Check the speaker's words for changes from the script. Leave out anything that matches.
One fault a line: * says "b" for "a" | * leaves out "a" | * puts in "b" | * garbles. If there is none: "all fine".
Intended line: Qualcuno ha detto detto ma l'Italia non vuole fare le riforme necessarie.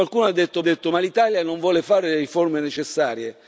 all fine